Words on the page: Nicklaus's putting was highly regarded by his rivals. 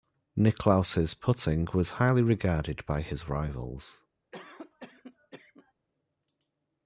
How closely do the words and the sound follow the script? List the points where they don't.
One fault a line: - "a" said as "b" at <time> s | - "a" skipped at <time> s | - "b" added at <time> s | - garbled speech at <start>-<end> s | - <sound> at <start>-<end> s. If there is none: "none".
- cough at 4.3-5.7 s